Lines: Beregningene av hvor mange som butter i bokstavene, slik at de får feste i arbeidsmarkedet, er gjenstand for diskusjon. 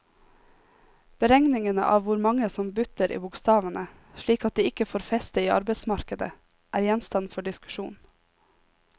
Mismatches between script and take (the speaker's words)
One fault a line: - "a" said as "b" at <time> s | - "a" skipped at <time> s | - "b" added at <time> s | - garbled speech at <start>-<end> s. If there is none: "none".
- "ikke" added at 4.7 s